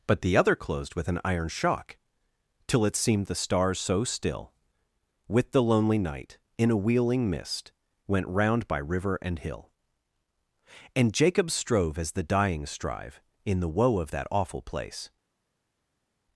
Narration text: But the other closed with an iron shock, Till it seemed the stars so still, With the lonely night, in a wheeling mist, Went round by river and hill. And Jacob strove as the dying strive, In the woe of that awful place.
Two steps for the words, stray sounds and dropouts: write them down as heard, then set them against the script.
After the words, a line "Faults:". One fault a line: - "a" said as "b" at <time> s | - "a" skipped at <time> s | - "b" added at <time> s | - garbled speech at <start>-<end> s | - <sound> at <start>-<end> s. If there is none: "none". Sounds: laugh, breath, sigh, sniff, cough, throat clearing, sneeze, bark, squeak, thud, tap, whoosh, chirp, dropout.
But the other closed with an iron shock, Till it seemed the stars so still, With the lonely night, in a wheeling mist, Went round by river and hill. And Jacob strove as the dying strive, In the woe of that awful place.
Faults:
none